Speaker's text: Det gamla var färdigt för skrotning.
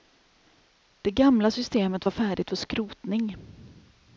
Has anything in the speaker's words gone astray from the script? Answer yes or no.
yes